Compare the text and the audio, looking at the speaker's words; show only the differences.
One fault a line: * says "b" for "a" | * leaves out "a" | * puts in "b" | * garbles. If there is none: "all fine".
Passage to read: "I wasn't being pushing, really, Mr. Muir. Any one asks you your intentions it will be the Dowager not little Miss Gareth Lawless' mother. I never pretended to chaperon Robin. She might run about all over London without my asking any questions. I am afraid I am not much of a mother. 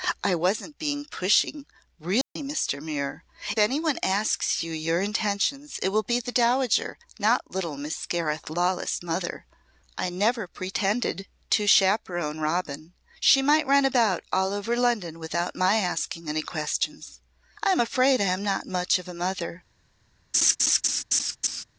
all fine